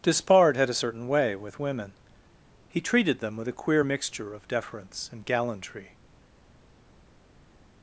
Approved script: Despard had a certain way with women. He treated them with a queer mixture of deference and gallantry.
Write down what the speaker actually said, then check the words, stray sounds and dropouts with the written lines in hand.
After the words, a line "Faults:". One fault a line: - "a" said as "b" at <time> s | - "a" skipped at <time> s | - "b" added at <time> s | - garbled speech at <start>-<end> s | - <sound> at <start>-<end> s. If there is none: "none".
Despard had a certain way with women. He treated them with a queer mixture of deference and gallantry.
Faults:
none